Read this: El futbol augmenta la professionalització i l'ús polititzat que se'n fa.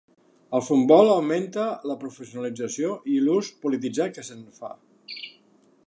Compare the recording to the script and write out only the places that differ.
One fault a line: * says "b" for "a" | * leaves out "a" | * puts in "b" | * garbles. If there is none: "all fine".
all fine